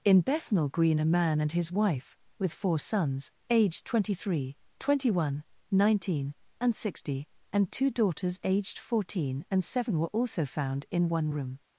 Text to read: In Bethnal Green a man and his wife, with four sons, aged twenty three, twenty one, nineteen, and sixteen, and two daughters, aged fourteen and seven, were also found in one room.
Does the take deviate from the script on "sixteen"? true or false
true